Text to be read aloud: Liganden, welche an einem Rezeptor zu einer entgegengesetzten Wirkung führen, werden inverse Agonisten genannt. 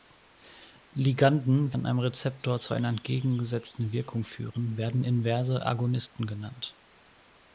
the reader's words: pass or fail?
fail